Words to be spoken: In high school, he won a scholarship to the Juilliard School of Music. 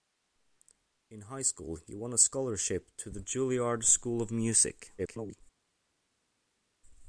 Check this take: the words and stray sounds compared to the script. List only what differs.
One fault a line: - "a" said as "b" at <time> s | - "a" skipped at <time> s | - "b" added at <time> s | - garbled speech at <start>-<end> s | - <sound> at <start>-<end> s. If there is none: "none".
- garbled speech at 5.0-5.4 s